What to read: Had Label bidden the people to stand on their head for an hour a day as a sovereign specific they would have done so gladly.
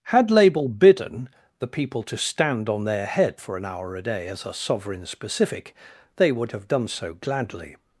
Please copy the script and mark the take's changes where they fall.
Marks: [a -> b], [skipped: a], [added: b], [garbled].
Had Label bidden the people to stand on their head for an hour a day as a sovereign specific they would have done so gladly.